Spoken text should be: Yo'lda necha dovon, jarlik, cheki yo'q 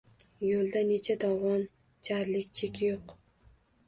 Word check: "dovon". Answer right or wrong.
right